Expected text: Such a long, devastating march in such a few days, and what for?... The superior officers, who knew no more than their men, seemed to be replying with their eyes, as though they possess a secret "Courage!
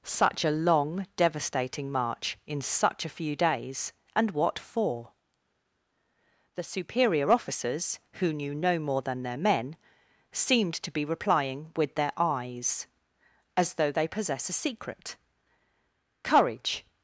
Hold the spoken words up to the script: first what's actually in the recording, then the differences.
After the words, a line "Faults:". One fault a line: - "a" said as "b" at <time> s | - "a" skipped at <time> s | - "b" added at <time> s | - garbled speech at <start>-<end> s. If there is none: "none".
Such a long, devastating march in such a few days, and what for?... The superior officers, who knew no more than their men, seemed to be replying with their eyes, as though they possess a secret "Courage!
Faults:
none